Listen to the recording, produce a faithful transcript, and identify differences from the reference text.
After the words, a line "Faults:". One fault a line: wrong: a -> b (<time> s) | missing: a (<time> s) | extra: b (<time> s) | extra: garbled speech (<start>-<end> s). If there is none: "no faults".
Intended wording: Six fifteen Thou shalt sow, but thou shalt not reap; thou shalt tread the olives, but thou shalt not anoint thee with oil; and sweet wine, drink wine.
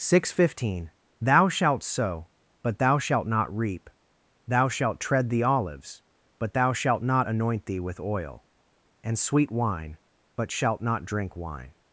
Six fifteen Thou shalt sow, but thou shalt not reap; thou shalt tread the olives, but thou shalt not anoint thee with oil; and sweet wine, but shalt not drink wine.
Faults:
extra: but shalt not (10.4 s)